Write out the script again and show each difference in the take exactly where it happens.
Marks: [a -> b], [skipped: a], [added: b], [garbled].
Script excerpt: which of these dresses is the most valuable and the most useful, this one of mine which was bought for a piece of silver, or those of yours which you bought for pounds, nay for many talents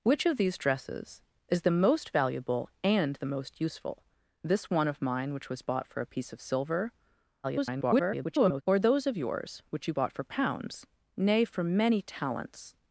which of these dresses is the most valuable and the most useful, this one of mine which was bought for a piece of silver, [garbled] or those of yours which you bought for pounds, nay for many talents